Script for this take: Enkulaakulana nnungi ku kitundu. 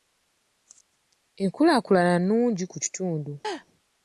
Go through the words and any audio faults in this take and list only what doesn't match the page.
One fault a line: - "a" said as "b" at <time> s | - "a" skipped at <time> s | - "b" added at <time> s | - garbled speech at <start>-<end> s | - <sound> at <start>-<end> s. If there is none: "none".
- laugh at 3.4-3.7 s